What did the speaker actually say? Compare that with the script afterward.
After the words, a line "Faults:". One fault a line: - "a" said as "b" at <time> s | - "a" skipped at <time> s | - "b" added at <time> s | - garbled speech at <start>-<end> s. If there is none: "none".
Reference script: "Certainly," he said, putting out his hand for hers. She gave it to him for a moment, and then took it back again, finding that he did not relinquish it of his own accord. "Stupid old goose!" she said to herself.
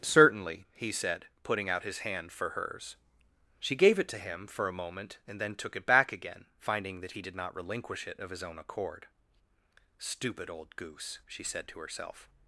"Certainly," he said, putting out his hand for hers. She gave it to him for a moment, and then took it back again, finding that he did not relinquish it of his own accord. "Stupid old goose!" she said to herself.
Faults:
none